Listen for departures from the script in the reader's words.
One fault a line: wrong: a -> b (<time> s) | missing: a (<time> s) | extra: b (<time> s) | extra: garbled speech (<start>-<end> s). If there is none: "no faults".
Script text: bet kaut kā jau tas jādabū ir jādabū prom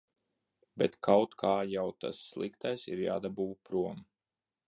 wrong: jādabū -> sliktais (2.3 s)